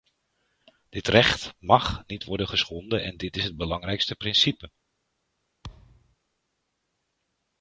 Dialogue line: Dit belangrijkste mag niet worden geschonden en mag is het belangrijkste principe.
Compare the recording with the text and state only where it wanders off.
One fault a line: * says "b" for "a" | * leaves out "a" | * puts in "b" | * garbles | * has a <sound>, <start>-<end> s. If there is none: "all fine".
* says "recht" for "belangrijkste"
* says "dit" for "mag"
* has a thud, 5.6-6.2 s